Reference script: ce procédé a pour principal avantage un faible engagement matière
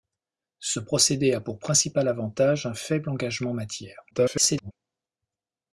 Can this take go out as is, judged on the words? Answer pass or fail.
fail